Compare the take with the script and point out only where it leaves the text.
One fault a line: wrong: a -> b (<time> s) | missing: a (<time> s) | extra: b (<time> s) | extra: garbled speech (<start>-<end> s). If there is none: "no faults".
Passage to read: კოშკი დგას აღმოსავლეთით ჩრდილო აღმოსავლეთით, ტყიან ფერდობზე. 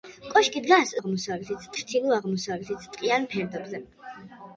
no faults